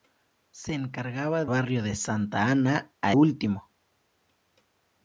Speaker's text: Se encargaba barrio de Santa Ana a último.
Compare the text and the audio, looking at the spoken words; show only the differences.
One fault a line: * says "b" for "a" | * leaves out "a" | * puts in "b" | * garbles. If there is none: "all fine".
all fine